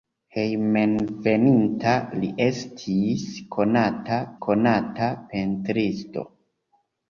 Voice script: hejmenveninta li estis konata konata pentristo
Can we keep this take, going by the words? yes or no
yes